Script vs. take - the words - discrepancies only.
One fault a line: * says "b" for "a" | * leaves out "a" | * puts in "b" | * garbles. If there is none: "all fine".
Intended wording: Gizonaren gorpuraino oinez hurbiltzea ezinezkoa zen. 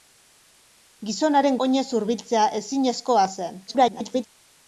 * leaves out "gorpuraino"
* garbles